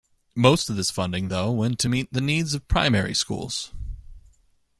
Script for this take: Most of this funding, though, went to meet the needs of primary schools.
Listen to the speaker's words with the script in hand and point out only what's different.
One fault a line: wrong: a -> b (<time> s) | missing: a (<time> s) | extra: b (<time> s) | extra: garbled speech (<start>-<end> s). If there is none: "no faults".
no faults